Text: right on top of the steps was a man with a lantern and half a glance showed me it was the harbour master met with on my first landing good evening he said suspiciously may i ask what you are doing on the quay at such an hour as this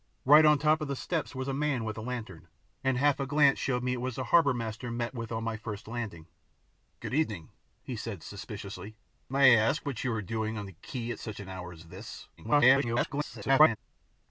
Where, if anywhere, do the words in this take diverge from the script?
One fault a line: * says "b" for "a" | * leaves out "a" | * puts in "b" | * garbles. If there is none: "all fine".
* garbles